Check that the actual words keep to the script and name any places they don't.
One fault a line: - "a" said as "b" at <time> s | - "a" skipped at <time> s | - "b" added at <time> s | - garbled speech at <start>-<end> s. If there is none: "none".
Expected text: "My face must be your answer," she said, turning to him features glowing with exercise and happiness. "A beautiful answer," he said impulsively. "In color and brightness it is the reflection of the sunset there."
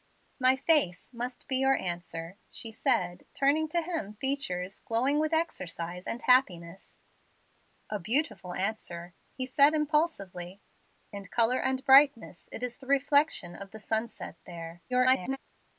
- garbled speech at 14.9-15.4 s